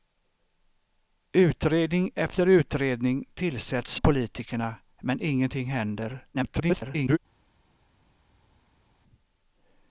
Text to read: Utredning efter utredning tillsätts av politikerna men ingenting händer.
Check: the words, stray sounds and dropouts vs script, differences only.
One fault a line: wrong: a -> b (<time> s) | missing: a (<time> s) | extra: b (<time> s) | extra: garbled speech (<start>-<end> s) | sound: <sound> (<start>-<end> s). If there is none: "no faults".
missing: av (4.0 s)
extra: garbled speech (6.3-7.2 s)